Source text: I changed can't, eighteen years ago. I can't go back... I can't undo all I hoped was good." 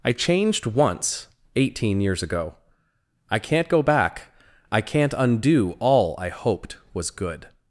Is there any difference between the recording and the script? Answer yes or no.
yes